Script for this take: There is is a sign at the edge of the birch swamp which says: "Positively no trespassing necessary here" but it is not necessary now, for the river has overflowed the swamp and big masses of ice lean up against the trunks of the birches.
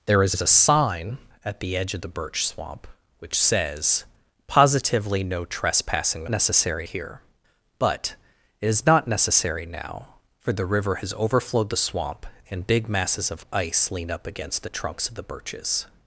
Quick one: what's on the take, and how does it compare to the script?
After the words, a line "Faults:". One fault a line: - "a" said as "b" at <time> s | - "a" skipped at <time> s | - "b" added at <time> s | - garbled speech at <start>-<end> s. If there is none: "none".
There is is a sign at the edge of the birch swamp which says: "Positively no trespassing necessary here" but it is not necessary now, for the river has overflowed the swamp and big masses of ice lean up against the trunks of the birches.
Faults:
none